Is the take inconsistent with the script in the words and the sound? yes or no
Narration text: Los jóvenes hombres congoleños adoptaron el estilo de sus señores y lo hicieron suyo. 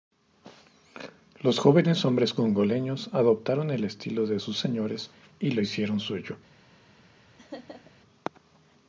yes